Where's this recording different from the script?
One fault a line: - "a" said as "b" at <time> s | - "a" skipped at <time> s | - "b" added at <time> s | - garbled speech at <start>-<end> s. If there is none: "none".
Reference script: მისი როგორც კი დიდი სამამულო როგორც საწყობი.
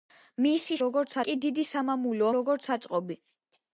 none